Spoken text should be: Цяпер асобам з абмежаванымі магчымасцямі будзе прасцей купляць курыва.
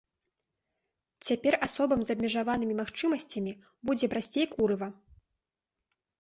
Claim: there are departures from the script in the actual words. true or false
true